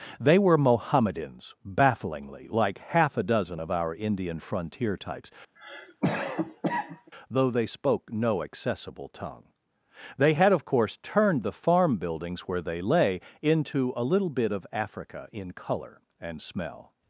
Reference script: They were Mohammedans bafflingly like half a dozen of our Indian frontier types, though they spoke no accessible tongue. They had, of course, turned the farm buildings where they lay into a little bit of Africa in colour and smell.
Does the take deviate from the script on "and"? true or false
false